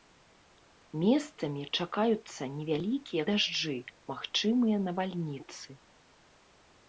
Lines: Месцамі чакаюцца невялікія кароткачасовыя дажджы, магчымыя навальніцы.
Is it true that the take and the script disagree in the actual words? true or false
true